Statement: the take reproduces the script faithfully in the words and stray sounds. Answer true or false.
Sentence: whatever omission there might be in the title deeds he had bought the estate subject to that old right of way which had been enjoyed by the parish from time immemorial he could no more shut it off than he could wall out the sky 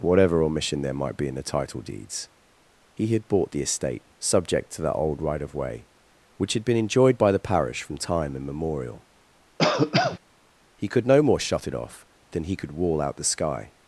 false